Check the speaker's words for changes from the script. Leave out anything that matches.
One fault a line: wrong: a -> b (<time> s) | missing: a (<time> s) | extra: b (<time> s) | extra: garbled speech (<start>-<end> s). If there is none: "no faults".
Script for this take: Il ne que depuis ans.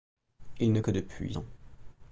no faults